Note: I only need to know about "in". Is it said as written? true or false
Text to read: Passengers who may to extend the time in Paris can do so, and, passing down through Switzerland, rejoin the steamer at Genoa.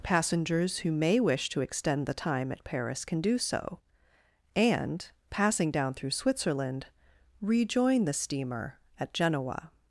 false